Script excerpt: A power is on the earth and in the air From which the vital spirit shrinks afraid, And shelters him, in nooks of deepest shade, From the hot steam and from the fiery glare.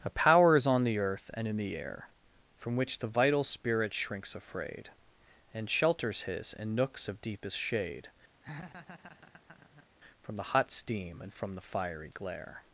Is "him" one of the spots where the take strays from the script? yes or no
yes